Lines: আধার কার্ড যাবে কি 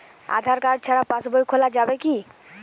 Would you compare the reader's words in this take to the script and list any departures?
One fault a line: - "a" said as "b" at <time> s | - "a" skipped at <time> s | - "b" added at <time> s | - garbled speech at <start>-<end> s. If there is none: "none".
- "ছাড়া পাশবই খোলা" added at 0.8 s